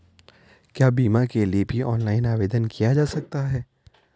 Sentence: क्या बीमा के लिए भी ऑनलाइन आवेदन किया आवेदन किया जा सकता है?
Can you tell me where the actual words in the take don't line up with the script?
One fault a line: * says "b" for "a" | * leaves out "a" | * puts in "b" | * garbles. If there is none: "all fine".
* leaves out "आवेदन किया"